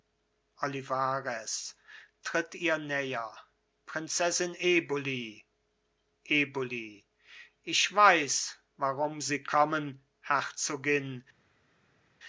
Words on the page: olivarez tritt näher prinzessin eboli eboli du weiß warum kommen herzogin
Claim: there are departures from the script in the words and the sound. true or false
true